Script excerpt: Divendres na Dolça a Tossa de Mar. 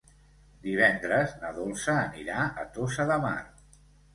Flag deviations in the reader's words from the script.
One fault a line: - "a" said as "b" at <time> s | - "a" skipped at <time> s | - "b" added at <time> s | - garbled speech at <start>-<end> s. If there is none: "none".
- "anirà" added at 2.1 s